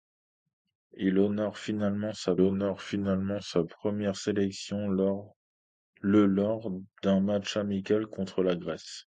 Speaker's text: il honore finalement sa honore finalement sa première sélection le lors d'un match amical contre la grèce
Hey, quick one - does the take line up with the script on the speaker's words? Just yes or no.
yes